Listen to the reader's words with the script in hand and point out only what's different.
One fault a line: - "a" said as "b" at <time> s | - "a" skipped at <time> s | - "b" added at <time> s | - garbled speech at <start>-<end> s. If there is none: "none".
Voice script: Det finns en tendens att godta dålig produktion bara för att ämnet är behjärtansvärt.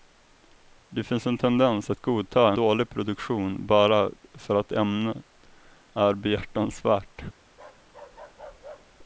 none